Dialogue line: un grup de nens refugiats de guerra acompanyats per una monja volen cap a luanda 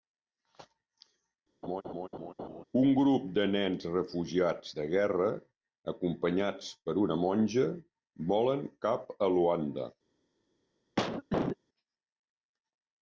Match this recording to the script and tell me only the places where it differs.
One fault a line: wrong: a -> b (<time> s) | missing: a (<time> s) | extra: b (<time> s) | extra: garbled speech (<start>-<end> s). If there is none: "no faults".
no faults